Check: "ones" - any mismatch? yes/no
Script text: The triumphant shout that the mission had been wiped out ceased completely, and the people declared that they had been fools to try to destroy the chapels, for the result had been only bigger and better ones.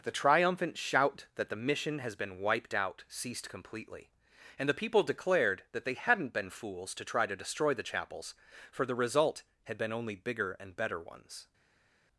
no